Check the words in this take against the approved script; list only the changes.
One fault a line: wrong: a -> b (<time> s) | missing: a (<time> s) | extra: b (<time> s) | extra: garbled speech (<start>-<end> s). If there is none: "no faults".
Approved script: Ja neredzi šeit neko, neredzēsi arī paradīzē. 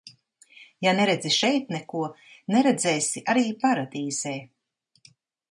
no faults